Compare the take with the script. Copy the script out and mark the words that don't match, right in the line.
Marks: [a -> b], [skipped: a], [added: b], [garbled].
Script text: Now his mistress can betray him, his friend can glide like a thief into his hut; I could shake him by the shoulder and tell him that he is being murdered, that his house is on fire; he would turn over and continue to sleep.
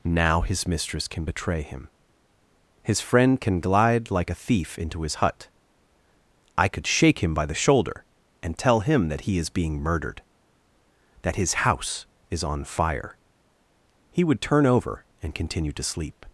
Now his mistress can betray him, his friend can glide like a thief into his hut; I could shake him by the shoulder and tell him that he is being murdered, that his house is on fire; he would turn over and continue to sleep.